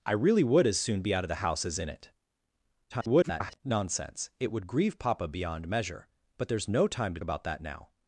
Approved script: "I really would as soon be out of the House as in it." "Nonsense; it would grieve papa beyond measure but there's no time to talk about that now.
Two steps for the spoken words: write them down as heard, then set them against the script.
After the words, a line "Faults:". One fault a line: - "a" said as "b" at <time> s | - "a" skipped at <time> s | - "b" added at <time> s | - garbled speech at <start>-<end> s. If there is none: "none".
"I really would as soon be out of the House as in it." [garbled] "Nonsense; it would grieve papa beyond measure but there's no time to about that now.
Faults:
- garbled speech at 2.9-3.6 s
- "talk" skipped at 7.2 s